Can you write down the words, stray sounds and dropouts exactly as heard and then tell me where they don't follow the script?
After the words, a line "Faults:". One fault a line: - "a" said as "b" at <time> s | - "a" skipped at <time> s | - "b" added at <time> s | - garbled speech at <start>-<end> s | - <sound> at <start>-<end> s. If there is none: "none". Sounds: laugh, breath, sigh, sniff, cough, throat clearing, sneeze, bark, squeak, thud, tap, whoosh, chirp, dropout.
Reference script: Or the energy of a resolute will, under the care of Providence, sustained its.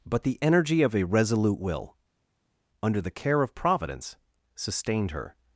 But the energy of a resolute will, under the care of Providence, sustained her.
Faults:
- "Or" said as "But" at 0.1 s
- "its" said as "her" at 5.1 s